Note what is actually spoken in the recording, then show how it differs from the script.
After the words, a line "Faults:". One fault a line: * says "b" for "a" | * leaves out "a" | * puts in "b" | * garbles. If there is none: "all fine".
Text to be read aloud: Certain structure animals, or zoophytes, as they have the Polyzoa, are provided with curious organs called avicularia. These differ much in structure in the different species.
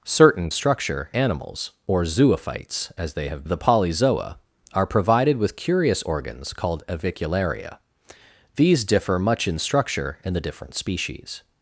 Certain structure animals, or zoophytes, as they have the Polyzoa, are provided with curious organs called avicularia. These differ much in structure in the different species.
Faults:
all fine